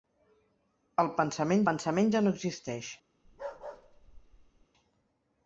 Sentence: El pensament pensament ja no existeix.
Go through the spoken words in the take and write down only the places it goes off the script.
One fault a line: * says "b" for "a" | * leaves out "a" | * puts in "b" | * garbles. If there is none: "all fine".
all fine